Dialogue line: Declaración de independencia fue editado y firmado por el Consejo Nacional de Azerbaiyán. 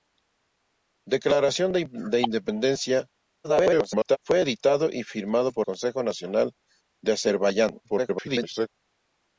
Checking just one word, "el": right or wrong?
wrong